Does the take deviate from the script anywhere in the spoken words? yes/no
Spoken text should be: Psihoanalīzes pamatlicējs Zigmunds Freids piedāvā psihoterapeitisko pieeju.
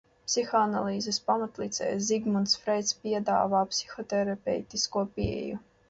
no